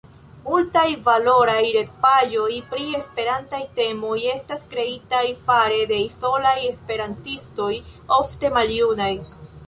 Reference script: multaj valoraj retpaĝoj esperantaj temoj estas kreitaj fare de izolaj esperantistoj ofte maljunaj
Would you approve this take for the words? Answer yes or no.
no